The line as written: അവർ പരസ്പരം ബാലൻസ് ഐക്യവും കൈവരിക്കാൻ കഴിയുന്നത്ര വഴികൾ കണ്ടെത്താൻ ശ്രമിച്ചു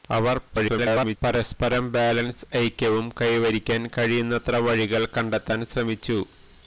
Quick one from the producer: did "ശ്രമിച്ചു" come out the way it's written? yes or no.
yes